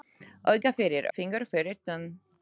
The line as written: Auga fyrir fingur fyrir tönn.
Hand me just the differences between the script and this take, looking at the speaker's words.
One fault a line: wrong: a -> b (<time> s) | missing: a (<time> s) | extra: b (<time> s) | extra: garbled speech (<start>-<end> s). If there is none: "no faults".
no faults